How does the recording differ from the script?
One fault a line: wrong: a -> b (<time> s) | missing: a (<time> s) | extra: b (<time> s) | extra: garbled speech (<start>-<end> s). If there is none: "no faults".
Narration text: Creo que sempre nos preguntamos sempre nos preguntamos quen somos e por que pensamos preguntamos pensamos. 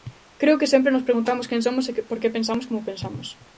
missing: sempre nos preguntamos (1.5 s)
wrong: preguntamos -> como (2.7 s)